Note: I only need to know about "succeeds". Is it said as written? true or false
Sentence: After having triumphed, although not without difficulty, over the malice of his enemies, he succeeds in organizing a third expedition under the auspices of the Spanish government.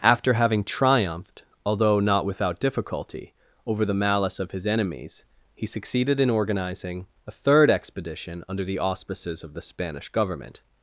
false